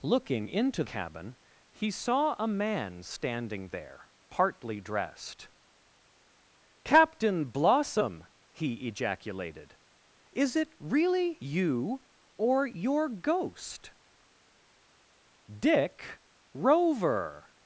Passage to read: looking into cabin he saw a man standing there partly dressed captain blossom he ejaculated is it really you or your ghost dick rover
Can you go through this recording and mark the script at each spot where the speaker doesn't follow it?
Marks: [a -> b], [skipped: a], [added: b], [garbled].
looking into cabin he saw a man standing there partly dressed captain blossom he ejaculated is it really you or your ghost dick rover